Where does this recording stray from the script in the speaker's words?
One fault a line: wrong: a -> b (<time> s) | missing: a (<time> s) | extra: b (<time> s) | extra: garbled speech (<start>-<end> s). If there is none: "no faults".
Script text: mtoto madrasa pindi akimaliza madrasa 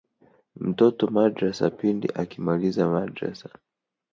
no faults